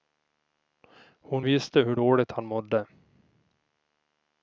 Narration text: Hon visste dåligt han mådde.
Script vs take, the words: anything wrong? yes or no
yes